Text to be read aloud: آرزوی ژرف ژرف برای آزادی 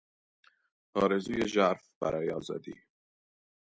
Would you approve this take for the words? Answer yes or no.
no